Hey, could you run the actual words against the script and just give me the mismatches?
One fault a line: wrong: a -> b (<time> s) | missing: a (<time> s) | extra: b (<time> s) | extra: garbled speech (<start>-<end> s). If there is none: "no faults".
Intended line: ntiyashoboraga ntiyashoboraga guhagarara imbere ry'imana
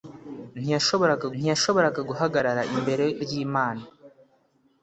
no faults